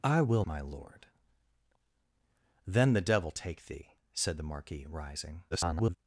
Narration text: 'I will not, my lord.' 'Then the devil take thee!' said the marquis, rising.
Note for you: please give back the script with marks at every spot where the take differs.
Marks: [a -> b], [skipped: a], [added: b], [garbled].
'I will [skipped: not,] my lord.' 'Then the devil take thee!' said the marquis, rising. [garbled]